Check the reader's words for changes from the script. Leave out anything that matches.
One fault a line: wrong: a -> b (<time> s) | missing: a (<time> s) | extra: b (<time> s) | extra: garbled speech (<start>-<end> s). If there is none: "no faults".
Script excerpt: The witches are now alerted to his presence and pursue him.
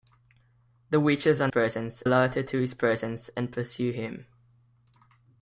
wrong: now -> presence (1.5 s)